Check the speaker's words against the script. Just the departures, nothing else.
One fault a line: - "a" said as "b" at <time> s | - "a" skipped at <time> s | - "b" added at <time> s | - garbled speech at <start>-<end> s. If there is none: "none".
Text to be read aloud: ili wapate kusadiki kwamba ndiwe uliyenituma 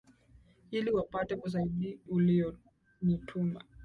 - "kusadiki kwamba ndiwe" skipped at 1.4 s